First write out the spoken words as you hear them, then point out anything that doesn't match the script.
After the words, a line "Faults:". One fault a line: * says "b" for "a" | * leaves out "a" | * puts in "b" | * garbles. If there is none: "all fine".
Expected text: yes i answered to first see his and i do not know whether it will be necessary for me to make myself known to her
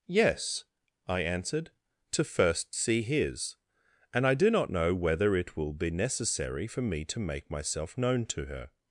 yes i answered to first see his and i do not know whether it will be necessary for me to make myself known to her
Faults:
all fine